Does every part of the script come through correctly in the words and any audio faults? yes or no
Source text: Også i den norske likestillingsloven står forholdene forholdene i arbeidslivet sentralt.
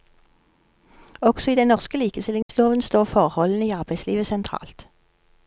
no